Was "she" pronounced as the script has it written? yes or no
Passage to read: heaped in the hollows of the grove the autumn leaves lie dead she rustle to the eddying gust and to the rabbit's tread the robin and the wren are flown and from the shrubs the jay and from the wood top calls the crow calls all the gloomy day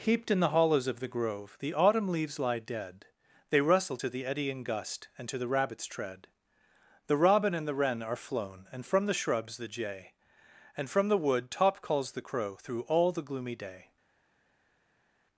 no